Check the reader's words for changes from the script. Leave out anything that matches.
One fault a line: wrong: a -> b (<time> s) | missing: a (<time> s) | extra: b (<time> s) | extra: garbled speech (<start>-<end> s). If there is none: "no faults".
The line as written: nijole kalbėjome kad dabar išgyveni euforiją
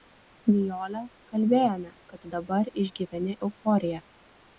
no faults